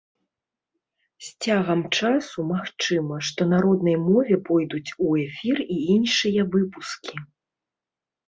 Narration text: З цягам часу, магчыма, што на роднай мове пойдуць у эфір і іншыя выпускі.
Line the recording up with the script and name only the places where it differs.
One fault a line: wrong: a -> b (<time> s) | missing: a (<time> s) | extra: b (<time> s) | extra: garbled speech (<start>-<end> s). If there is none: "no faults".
no faults